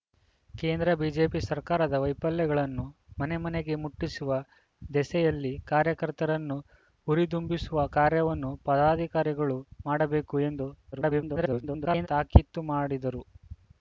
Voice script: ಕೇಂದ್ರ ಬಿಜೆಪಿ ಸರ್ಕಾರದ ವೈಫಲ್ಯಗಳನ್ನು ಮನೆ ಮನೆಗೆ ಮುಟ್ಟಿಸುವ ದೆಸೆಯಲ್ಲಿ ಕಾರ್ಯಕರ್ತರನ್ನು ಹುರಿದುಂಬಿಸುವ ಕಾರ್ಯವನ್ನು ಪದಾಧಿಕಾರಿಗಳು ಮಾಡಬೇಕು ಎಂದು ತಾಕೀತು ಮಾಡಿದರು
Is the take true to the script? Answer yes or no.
no